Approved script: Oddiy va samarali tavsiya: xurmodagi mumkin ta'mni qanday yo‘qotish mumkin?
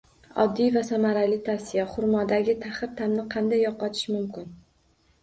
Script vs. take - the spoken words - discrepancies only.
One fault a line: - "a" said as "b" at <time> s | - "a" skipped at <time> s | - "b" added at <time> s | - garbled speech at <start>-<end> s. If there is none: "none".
- "mumkin" said as "taxir" at 2.6 s